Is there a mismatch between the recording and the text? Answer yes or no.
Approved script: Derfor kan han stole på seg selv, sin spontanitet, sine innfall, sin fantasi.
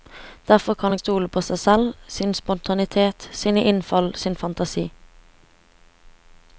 no